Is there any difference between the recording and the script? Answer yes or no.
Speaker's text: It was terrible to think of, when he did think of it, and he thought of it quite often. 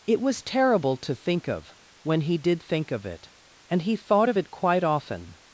no